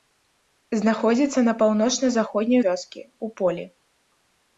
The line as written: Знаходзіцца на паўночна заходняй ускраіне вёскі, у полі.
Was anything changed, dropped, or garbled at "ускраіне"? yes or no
yes